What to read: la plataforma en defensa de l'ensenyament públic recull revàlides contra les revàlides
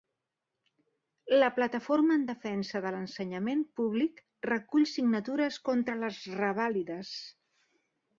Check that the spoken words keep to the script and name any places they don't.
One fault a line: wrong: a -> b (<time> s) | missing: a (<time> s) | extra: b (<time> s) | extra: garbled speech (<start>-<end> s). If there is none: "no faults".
wrong: revàlides -> signatures (4.9 s)